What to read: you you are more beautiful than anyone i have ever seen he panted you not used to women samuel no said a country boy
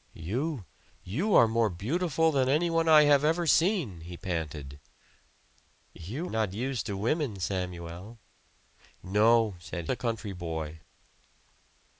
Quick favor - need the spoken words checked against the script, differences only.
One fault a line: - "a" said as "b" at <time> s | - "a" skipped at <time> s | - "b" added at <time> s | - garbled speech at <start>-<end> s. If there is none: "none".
none